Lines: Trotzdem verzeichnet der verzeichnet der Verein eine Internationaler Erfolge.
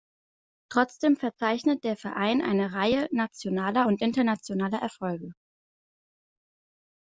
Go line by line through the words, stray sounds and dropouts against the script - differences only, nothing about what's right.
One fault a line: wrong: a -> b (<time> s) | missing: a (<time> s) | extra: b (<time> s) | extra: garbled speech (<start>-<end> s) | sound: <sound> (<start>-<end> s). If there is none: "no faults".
wrong: verzeichnet der Verein eine -> Verein eine Reihe nationaler und (1.9 s)